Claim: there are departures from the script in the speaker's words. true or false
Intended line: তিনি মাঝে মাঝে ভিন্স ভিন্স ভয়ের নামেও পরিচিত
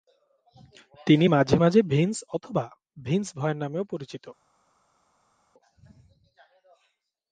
true